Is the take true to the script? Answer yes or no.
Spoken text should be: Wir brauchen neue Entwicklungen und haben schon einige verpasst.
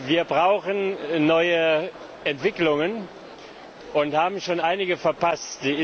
yes